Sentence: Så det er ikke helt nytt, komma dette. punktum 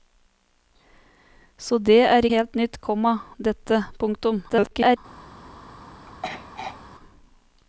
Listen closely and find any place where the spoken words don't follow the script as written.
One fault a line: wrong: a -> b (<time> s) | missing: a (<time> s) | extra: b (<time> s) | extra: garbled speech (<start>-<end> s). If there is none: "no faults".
missing: ikke (2.2 s)
extra: garbled speech (4.5-5.0 s)